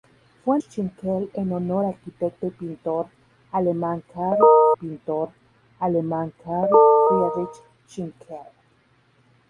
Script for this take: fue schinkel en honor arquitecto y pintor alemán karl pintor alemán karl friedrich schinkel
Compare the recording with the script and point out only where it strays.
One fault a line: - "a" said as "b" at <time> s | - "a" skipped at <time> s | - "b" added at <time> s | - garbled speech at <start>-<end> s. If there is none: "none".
none